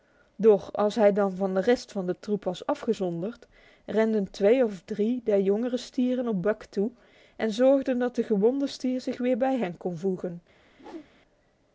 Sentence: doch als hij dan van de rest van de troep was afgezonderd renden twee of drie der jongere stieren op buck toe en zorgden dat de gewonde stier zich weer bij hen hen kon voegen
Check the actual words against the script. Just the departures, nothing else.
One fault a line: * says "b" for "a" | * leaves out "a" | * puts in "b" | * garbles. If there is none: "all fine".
* leaves out "hen"